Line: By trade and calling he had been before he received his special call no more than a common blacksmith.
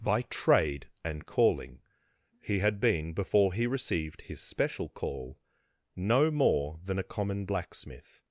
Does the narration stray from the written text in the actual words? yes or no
no